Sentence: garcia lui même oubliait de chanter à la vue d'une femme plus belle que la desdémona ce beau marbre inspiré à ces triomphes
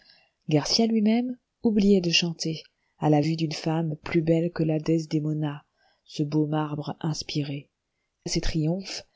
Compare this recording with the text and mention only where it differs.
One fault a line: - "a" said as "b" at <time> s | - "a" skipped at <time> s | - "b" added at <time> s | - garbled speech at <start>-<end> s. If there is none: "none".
none